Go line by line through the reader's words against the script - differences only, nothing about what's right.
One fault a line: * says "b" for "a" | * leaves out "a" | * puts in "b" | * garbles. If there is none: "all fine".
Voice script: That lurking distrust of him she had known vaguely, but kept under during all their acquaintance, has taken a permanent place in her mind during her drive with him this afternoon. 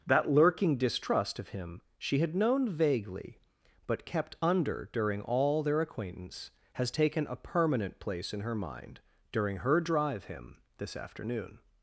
* leaves out "with"